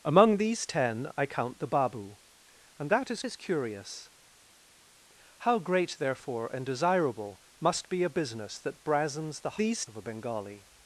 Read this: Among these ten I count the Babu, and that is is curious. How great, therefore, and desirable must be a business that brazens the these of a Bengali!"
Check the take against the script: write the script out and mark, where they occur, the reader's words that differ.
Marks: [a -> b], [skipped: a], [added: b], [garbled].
Among these ten I count the Babu, and that is is curious. How great, therefore, and desirable must be a business that brazens the these of a Bengali!"